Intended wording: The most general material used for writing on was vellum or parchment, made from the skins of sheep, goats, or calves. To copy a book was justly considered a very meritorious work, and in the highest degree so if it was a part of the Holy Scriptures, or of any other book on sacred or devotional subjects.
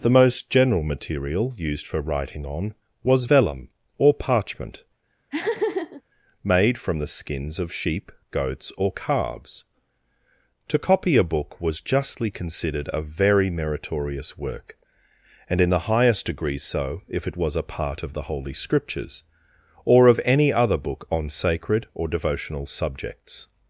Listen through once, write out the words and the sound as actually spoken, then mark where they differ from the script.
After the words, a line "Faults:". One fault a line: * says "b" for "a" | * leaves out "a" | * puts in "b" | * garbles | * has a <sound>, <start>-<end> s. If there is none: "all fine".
The most general material used for writing on was vellum or parchment, made from the skins of sheep, goats, or calves. To copy a book was justly considered a very meritorious work, and in the highest degree so if it was a part of the Holy Scriptures, or of any other book on sacred or devotional subjects.
Faults:
* has a laugh, 5.3-6.0 s